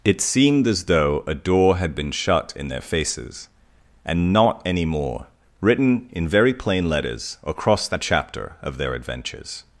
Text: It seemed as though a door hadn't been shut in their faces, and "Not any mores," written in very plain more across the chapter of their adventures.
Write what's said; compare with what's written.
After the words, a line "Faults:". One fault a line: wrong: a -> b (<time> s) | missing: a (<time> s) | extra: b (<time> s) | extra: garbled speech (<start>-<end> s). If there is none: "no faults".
It seemed as though a door had been shut in their faces, and "Not any more," written in very plain letters across the chapter of their adventures.
Faults:
wrong: hadn't -> had (1.8 s)
wrong: mores -> more (4.8 s)
wrong: more -> letters (6.9 s)